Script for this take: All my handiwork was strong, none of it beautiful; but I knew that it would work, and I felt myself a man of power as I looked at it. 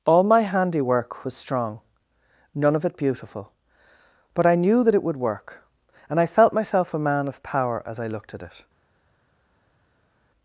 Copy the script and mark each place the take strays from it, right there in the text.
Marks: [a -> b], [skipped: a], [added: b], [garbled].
All my handiwork was strong, none of it beautiful; but I knew that it would work, and I felt myself a man of power as I looked at it.